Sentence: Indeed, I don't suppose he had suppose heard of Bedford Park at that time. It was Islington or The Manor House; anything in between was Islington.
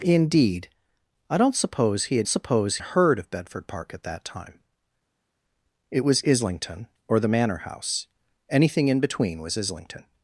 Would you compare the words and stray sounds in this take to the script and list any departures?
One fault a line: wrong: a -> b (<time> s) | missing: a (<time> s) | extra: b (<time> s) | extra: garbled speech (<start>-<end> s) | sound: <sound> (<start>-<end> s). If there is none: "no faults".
no faults